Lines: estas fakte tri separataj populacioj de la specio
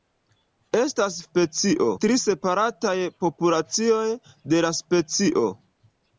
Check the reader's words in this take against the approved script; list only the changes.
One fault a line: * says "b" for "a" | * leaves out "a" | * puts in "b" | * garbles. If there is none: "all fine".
* says "specio" for "fakte"